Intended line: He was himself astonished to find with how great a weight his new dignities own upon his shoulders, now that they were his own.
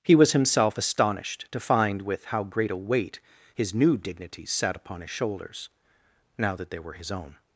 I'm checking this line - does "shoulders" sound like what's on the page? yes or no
yes